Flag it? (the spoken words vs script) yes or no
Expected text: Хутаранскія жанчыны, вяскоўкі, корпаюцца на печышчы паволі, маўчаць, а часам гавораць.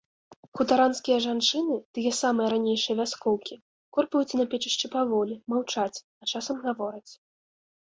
yes